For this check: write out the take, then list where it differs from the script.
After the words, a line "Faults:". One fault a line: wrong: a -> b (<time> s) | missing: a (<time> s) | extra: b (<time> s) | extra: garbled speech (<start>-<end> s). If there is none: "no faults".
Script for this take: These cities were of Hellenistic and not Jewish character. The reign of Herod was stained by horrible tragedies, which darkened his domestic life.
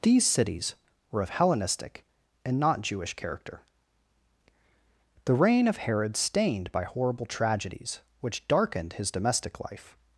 These cities were of Hellenistic and not Jewish character. The reign of Herod stained by horrible tragedies, which darkened his domestic life.
Faults:
missing: was (6.2 s)